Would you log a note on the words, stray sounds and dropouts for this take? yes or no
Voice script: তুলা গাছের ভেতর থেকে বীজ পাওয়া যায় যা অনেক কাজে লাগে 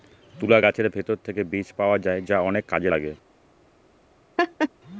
yes